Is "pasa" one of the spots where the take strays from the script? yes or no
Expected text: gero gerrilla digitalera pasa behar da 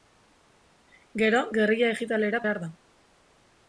yes